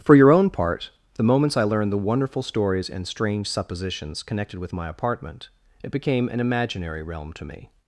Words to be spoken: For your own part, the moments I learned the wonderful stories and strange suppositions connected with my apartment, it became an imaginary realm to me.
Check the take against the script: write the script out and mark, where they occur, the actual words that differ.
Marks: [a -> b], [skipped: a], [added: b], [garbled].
For your own part, the moments I learned the wonderful stories and strange suppositions connected with my apartment, it became an imaginary realm to me.